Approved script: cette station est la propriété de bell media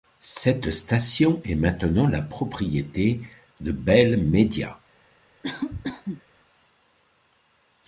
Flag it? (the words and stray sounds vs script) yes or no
yes